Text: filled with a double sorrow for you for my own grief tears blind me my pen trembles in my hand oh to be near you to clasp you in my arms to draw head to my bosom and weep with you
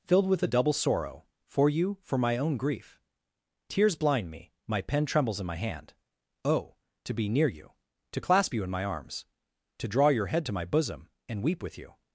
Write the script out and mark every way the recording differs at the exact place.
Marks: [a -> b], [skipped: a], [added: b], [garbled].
filled with a double sorrow for you for my own grief tears blind me my pen trembles in my hand oh to be near you to clasp you in my arms to draw [added: your] head to my bosom and weep with you